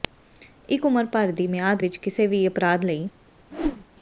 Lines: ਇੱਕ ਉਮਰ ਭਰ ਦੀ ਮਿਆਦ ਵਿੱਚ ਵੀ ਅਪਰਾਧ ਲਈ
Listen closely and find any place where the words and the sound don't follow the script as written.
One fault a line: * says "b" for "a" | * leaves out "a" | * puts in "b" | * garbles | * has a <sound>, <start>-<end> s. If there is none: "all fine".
* puts in "ਕਿਸੇ"
* has a whoosh, 3.5-3.9 s